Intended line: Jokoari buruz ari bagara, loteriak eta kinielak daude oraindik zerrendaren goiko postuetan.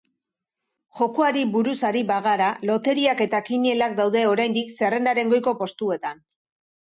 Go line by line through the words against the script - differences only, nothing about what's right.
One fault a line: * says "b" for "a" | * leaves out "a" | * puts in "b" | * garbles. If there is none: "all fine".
all fine